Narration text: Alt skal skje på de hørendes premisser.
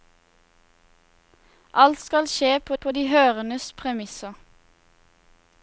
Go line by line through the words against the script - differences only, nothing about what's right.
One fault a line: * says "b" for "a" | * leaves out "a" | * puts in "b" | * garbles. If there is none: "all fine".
* puts in "på"